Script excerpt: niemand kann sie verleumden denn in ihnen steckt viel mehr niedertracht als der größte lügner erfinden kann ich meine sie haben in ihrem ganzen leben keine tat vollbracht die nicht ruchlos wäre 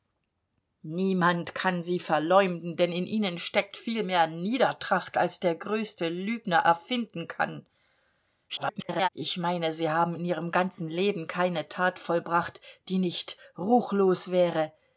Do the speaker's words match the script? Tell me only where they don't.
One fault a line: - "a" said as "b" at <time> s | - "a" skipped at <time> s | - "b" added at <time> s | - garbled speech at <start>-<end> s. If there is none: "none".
- garbled speech at 8.5-9.1 s